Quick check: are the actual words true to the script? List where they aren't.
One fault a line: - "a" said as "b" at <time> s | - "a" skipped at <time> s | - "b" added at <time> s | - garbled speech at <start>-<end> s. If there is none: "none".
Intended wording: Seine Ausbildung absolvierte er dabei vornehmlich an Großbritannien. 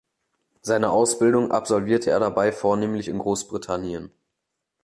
- "an" said as "in" at 3.1 s